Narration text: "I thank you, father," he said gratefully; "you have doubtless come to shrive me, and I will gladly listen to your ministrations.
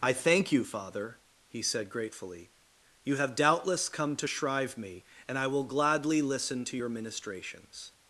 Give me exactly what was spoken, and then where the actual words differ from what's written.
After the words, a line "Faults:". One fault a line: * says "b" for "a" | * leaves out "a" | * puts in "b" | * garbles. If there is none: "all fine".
"I thank you, father," he said gratefully; "you have doubtless come to shrive me, and I will gladly listen to your ministrations.
Faults:
all fine